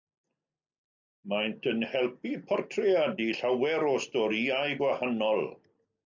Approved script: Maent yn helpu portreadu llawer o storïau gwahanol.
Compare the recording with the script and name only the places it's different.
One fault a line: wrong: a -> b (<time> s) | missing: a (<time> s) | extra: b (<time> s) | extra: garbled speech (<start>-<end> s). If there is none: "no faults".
no faults